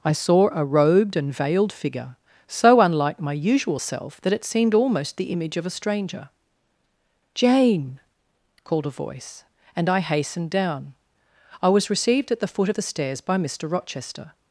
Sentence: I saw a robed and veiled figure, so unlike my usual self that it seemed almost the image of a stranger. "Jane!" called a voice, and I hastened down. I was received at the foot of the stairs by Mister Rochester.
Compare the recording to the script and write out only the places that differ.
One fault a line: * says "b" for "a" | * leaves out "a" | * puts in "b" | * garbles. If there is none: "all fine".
all fine